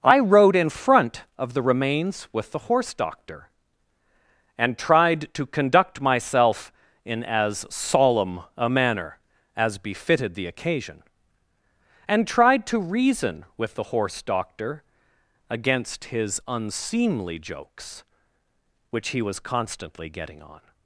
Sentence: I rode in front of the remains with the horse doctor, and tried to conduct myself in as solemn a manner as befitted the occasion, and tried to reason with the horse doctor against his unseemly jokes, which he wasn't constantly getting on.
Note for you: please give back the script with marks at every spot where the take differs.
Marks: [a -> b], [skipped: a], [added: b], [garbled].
I rode in front of the remains with the horse doctor, and tried to conduct myself in as solemn a manner as befitted the occasion, and tried to reason with the horse doctor against his unseemly jokes, which he [wasn't -> was] constantly getting on.